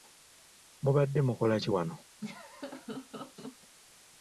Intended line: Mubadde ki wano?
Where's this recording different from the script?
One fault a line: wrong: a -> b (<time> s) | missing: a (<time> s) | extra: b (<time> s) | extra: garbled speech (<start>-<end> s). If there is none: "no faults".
extra: mukola (1.3 s)